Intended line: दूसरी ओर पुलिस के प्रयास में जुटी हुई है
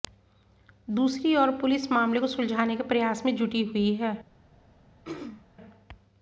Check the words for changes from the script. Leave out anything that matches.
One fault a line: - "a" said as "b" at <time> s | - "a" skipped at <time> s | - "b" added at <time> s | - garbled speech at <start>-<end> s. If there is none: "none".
- "मामले को सुलझाने" added at 1.9 s